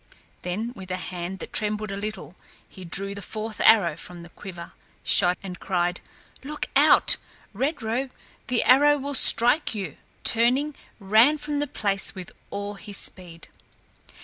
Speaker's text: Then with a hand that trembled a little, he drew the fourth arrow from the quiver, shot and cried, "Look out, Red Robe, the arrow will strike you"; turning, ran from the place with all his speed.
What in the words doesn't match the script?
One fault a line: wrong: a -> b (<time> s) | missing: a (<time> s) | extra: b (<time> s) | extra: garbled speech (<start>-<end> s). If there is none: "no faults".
no faults